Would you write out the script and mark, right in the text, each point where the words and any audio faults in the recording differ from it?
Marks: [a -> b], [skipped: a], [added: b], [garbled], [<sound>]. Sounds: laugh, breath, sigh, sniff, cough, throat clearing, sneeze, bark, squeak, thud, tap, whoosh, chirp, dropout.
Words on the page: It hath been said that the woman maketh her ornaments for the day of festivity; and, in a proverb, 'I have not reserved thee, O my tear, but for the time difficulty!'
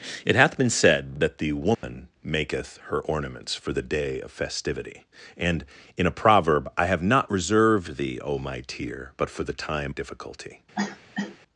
It hath been said that the woman [dropout] maketh her ornaments for the day of festivity; and, in a proverb, 'I have not reserved thee, O my tear, but for the time difficulty!' [cough]